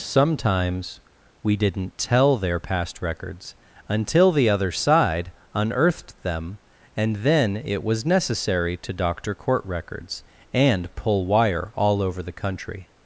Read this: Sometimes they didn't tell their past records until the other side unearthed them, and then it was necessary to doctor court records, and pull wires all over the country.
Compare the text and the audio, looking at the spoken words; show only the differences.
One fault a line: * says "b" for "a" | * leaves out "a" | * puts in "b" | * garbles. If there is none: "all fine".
* says "we" for "they"
* says "wire" for "wires"